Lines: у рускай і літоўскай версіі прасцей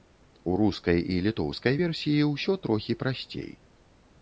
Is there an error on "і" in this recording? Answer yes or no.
no